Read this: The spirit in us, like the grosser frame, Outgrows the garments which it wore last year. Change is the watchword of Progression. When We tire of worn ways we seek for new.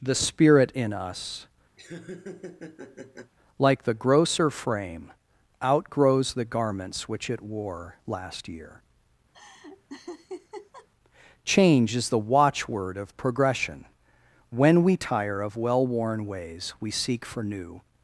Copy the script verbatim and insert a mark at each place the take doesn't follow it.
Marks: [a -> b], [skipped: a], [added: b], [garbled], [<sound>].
The spirit in us, [laugh] like the grosser frame, Outgrows the garments which it wore last year. [laugh] Change is the watchword of Progression. When We tire of [added: well] worn ways we seek for new.